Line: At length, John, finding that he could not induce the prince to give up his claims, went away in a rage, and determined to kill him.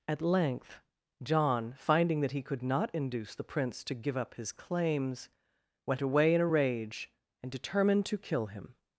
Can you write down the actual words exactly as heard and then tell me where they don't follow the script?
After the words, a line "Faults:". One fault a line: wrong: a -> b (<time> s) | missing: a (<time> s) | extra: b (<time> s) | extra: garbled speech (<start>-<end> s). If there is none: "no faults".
At length, John, finding that he could not induce the prince to give up his claims, went away in a rage, and determined to kill him.
Faults:
no faults